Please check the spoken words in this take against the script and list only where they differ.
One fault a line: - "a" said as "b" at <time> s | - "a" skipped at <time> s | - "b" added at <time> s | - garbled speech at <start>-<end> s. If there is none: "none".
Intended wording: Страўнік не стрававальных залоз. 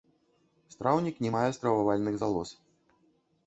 - "мае" added at 1.3 s